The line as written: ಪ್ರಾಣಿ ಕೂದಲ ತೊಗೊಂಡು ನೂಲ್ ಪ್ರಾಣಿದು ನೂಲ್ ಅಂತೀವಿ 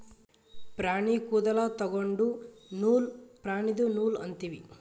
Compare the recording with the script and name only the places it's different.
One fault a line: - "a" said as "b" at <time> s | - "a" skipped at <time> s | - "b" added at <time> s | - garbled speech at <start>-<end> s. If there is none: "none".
none